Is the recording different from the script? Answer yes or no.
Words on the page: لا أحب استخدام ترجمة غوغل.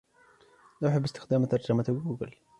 no